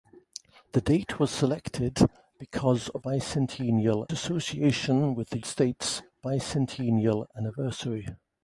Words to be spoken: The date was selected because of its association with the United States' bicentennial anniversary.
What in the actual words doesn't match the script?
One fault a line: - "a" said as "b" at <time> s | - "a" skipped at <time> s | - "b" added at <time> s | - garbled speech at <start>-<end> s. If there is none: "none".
- "its" said as "bicentennial" at 3.0 s
- "United" skipped at 5.4 s